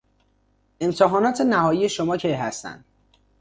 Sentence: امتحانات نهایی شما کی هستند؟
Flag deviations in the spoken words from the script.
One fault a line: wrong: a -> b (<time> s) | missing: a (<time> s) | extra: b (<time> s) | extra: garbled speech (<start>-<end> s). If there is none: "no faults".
no faults